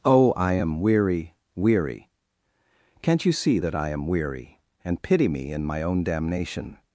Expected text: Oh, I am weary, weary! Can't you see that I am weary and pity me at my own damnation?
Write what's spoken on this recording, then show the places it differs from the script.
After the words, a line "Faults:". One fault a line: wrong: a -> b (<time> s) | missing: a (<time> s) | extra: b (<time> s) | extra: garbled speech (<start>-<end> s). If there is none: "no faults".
Oh, I am weary, weary! Can't you see that I am weary and pity me in my own damnation?
Faults:
wrong: at -> in (5.5 s)